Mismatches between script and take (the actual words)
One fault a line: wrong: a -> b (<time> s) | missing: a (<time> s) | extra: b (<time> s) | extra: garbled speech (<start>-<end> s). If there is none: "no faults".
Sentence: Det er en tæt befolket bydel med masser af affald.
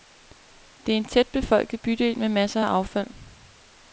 no faults